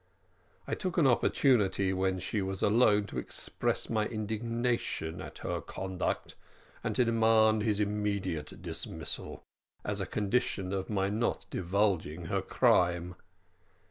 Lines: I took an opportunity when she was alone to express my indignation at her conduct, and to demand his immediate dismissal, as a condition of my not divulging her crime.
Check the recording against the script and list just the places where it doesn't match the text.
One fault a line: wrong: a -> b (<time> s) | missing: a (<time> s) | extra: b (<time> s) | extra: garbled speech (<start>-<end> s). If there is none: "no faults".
no faults